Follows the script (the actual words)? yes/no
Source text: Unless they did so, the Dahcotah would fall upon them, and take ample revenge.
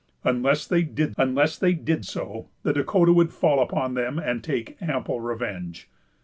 no